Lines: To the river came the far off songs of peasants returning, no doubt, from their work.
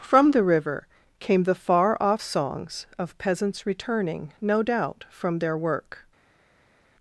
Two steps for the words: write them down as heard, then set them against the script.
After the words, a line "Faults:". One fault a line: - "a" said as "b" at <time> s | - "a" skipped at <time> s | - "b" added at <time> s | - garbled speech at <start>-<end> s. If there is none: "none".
From the river came the far off songs of peasants returning, no doubt, from their work.
Faults:
- "To" said as "From" at 0.0 s